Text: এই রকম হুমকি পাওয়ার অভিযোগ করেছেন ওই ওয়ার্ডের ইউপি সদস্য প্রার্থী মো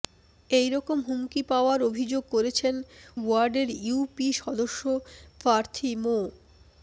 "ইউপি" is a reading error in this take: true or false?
false